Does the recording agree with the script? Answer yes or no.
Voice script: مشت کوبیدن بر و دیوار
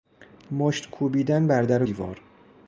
no